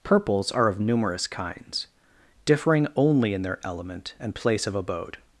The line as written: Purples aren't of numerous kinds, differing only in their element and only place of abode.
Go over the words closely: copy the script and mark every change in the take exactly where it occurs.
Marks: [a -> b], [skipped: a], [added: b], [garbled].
Purples [aren't -> are] of numerous kinds, differing only in their element and [skipped: only] place of abode.